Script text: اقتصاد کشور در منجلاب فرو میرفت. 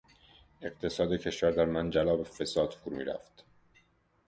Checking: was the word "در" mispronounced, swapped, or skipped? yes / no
no